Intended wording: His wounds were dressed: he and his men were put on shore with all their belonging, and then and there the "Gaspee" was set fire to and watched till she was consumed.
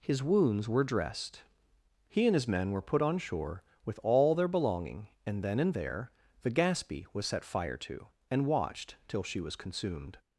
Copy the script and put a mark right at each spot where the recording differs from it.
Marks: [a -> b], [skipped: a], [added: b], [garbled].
His wounds were dressed: he and his men were put on shore with all their belonging, and then and there the "Gaspee" was set fire to and watched till she was consumed.